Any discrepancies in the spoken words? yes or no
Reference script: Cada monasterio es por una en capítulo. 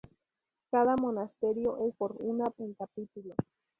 no